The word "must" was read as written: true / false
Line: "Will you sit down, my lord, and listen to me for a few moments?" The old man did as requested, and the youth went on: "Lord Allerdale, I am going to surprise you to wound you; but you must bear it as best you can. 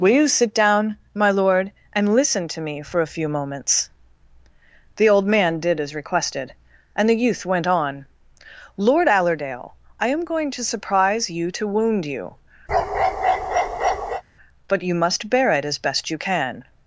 true